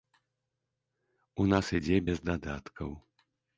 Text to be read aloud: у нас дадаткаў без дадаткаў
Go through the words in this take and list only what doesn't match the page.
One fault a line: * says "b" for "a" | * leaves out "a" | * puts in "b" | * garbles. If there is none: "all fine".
* says "ідзе" for "дадаткаў"